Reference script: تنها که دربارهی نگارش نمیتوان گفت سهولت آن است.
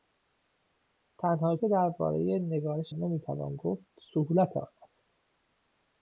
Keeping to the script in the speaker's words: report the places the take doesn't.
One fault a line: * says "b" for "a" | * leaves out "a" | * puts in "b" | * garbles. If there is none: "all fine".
all fine